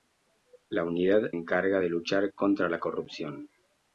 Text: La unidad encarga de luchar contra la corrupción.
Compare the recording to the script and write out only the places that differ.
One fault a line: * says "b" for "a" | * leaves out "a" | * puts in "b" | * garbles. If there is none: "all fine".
all fine